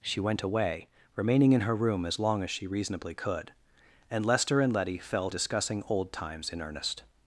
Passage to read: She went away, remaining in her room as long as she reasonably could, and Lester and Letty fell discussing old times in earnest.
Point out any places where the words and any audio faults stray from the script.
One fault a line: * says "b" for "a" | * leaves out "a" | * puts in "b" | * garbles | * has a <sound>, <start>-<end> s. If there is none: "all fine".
all fine